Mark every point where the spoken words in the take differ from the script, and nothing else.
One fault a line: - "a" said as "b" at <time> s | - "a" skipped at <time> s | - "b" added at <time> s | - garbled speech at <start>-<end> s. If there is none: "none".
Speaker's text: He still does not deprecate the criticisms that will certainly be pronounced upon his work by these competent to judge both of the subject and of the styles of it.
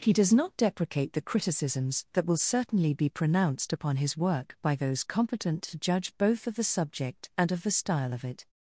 - "still" skipped at 0.1 s
- "these" said as "those" at 4.8 s
- "styles" said as "style" at 7.7 s